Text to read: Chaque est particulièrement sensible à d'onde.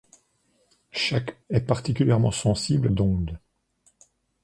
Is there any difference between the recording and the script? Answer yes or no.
no